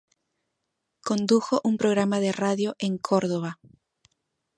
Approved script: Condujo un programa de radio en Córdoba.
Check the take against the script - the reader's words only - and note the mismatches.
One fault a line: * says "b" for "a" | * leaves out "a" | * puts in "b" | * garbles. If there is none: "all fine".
all fine